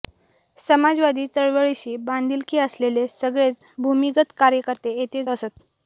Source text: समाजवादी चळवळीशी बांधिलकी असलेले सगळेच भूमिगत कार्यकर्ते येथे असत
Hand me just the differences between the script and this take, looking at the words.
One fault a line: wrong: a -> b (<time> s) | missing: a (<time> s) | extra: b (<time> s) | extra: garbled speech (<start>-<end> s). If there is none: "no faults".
no faults